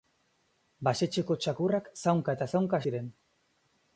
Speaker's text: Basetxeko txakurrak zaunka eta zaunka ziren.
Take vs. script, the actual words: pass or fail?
pass